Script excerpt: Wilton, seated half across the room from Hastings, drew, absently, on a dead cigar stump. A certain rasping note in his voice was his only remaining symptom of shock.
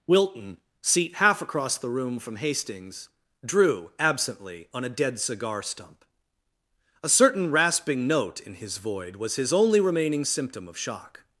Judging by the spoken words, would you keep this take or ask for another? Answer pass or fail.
fail